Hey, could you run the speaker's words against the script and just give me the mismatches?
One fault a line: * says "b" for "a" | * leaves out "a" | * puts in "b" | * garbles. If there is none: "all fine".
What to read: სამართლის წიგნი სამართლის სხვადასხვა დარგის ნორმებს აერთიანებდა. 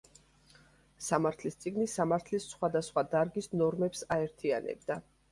all fine